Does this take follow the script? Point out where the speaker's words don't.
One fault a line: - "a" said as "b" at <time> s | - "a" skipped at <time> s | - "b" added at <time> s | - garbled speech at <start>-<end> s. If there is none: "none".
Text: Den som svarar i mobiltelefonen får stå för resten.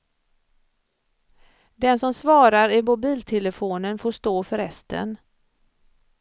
none